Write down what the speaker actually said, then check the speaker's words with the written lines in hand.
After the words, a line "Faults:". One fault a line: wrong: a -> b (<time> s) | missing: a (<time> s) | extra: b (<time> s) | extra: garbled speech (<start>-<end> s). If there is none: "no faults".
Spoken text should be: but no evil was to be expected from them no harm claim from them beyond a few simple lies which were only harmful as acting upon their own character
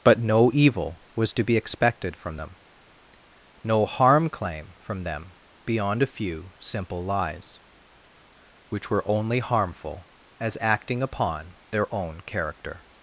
but no evil was to be expected from them no harm claim from them beyond a few simple lies which were only harmful as acting upon their own character
Faults:
no faults